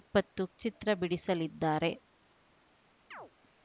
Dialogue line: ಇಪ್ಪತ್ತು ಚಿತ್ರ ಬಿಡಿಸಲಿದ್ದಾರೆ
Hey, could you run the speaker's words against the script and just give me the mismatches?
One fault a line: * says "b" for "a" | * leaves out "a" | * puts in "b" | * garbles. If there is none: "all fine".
all fine